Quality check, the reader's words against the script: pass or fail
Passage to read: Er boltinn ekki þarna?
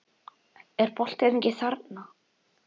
pass